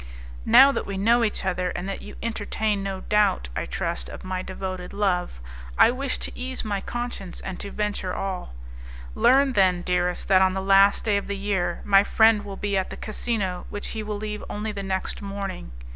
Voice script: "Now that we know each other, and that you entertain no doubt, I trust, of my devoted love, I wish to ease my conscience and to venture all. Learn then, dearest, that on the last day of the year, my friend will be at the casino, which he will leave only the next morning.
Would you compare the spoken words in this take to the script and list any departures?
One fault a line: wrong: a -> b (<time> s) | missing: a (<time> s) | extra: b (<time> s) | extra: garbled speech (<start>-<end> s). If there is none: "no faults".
no faults